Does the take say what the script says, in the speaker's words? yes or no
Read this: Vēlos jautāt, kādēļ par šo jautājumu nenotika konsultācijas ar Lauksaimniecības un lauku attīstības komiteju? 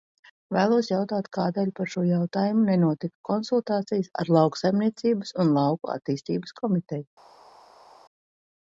yes